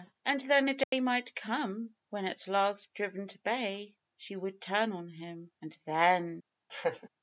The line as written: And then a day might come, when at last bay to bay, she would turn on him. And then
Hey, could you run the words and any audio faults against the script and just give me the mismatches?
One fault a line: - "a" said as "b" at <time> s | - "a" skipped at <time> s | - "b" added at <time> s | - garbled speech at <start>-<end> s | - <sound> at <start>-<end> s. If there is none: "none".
- dropout at 0.8-0.9 s
- "bay" said as "driven" at 2.9 s
- laugh at 6.7-7.1 s